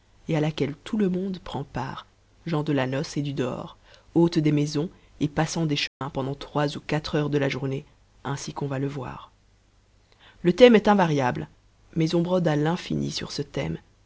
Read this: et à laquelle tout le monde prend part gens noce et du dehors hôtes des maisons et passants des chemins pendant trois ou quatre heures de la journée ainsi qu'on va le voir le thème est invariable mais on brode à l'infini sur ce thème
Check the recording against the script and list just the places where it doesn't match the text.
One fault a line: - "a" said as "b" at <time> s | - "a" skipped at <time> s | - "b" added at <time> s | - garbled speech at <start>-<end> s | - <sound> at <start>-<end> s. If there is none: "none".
- "de la" added at 2.6 s
- dropout at 5.9-6.0 s